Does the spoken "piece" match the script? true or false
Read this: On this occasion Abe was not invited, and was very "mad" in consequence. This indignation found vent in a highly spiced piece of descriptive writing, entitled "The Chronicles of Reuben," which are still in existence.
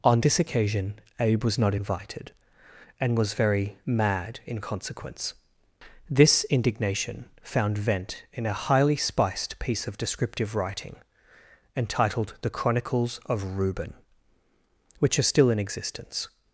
true